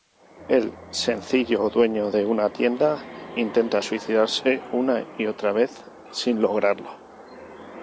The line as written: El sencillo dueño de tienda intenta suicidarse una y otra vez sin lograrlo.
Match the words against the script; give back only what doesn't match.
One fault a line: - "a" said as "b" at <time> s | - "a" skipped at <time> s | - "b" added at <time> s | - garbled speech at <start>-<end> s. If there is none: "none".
- "una" added at 2.2 s